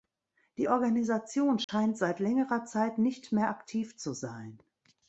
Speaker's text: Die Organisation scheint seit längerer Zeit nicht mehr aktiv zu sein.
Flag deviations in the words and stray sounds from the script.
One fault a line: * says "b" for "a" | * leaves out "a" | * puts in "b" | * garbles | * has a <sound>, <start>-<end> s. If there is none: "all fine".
* has a dropout, 1.6-1.7 s